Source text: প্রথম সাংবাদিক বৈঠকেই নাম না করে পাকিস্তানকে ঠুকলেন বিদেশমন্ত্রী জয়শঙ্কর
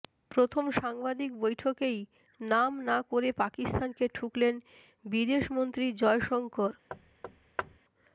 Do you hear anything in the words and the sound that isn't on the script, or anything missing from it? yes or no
yes